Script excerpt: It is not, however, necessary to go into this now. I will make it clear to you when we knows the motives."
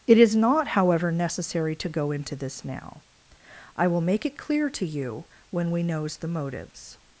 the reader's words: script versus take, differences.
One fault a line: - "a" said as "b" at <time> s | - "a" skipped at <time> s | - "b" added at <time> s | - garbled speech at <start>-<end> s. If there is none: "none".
none